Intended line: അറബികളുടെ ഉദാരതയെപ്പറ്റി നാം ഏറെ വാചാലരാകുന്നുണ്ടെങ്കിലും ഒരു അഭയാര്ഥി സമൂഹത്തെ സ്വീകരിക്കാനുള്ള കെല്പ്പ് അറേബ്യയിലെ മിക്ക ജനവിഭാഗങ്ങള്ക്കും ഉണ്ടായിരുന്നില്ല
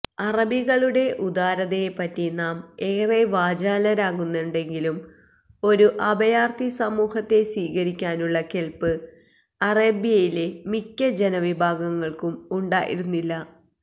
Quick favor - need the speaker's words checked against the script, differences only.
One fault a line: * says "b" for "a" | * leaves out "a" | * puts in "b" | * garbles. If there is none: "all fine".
all fine